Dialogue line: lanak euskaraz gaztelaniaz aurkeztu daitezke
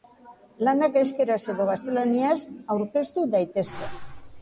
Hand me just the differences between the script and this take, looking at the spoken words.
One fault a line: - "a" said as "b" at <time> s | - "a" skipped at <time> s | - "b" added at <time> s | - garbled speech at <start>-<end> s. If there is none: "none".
- "edo" added at 1.6 s